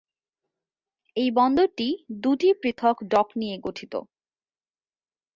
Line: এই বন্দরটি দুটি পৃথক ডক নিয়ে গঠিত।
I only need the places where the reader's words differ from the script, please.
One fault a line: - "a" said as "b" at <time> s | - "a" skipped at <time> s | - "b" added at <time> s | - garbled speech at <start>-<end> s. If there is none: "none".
none